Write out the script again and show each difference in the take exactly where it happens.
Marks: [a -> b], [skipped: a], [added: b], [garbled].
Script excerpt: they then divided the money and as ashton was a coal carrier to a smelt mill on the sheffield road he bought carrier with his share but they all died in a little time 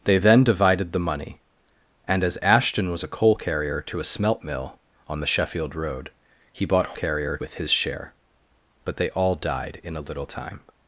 they then divided the money and as ashton was a coal carrier to a smelt mill on the sheffield road he bought carrier with his share but they all died in a little time